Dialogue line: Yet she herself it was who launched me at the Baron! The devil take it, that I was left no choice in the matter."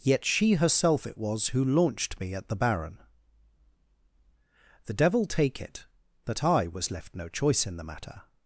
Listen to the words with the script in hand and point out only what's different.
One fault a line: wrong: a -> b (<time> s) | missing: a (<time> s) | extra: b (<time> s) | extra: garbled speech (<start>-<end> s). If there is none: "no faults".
no faults